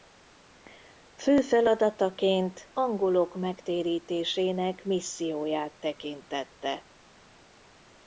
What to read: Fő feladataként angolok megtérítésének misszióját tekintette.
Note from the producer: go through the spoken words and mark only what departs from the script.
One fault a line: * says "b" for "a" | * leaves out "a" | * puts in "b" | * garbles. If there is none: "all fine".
all fine